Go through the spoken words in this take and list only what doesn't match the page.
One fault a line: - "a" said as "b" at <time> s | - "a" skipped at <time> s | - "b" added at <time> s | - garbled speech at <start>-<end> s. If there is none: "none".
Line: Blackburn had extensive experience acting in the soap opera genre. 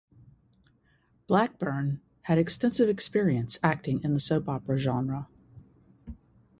none